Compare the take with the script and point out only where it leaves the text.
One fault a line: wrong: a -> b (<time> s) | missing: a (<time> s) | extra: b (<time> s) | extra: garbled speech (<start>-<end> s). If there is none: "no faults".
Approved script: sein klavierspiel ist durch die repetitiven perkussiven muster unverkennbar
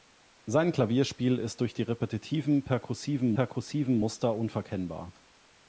extra: perkussiven (3.3 s)